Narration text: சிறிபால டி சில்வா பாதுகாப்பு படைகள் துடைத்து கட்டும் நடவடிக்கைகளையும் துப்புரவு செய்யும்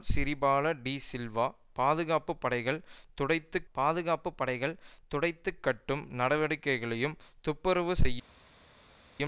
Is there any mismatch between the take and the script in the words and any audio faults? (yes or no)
yes